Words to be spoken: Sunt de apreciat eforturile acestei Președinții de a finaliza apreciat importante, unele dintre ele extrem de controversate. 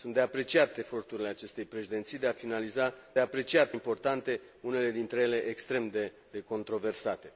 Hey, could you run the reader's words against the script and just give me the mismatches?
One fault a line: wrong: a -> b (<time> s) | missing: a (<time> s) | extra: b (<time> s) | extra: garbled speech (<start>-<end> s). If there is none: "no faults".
no faults